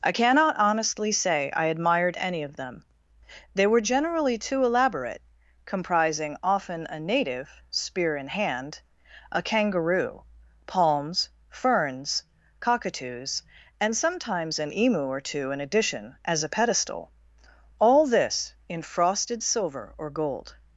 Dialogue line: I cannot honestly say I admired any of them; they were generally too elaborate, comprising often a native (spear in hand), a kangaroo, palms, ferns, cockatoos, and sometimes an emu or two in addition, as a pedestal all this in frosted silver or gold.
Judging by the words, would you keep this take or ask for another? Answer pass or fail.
pass